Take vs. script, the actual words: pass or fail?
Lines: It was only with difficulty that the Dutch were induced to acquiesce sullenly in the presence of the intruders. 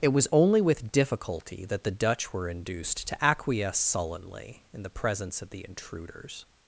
pass